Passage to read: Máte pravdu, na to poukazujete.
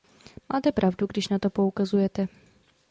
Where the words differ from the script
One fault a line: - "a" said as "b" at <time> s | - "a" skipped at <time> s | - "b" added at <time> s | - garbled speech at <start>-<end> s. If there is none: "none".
- "když" added at 1.1 s